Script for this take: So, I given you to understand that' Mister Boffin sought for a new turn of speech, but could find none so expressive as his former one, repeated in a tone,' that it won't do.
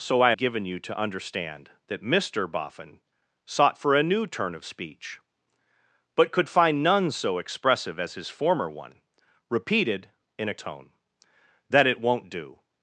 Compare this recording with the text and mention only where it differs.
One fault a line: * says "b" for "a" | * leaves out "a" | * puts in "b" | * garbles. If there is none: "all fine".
all fine